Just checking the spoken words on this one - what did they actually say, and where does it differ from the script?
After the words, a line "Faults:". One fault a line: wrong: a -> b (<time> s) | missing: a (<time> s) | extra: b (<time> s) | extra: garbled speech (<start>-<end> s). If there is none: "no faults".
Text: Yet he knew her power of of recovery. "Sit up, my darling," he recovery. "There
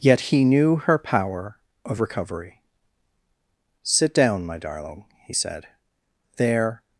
Yet he knew her power of recovery. "Sit down, my darling," he said. "There
Faults:
missing: of (2.0 s)
wrong: up -> down (4.1 s)
wrong: recovery -> said (5.3 s)